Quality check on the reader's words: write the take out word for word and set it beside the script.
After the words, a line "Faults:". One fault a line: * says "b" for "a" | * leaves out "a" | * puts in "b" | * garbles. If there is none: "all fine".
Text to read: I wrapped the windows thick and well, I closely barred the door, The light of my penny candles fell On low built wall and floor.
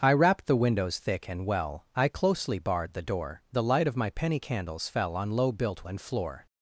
I wrapped the windows thick and well, I closely barred the door, The light of my penny candles fell On low built and floor.
Faults:
* leaves out "wall"